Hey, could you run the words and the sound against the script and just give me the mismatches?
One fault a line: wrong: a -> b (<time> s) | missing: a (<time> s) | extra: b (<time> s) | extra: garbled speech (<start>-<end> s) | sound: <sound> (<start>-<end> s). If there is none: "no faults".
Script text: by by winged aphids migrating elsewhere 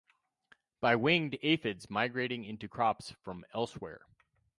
missing: by (0.9 s)
extra: into crops from (2.4 s)